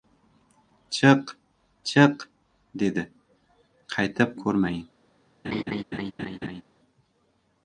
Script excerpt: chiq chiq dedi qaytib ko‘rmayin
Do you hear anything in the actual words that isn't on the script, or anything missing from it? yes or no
no